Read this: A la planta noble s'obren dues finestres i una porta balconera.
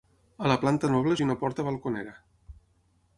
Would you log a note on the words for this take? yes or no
yes